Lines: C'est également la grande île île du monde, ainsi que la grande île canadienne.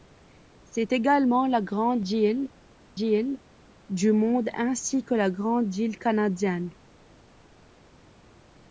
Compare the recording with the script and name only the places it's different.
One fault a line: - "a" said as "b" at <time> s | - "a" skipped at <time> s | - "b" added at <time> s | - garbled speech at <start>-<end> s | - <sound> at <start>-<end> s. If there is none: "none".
none